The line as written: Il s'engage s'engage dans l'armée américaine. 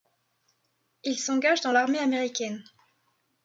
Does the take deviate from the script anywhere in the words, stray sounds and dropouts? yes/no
yes